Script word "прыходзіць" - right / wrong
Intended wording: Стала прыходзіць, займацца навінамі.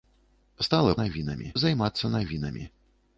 wrong